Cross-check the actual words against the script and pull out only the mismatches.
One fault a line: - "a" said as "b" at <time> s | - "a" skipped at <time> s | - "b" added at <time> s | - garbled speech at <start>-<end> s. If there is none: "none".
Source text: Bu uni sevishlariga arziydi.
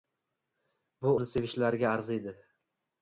none